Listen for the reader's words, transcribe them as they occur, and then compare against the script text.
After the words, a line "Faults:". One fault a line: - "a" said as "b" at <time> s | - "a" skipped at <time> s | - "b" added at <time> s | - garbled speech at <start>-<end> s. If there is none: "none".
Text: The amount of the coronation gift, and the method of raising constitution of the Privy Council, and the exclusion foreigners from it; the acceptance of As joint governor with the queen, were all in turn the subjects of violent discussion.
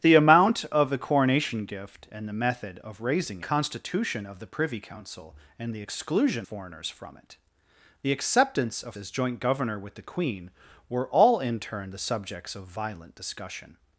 The amount of the coronation gift, and the method of raising constitution of the Privy Council, and the exclusion foreigners from it; the acceptance of As joint governor with the queen, were all in turn the subjects of violent discussion.
Faults:
none